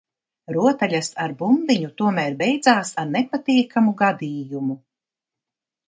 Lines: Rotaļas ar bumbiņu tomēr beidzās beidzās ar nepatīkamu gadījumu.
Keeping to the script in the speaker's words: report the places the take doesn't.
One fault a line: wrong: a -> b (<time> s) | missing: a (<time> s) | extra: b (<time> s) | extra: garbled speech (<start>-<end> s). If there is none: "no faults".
missing: beidzās (2.9 s)